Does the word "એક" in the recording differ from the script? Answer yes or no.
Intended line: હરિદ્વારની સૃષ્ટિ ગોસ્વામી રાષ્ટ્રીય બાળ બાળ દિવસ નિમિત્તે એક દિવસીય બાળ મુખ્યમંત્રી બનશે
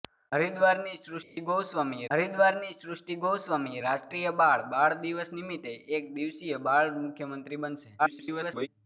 no